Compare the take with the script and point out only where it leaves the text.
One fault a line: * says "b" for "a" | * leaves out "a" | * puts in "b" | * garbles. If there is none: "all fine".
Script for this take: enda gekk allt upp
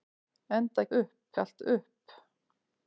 * says "upp" for "gekk"